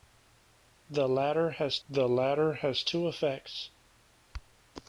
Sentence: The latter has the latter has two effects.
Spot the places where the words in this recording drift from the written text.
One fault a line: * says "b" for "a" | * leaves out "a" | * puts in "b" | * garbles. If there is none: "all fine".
all fine